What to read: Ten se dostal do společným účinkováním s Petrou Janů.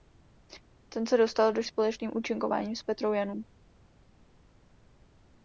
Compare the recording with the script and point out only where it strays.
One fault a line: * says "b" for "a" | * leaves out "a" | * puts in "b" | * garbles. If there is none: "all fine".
all fine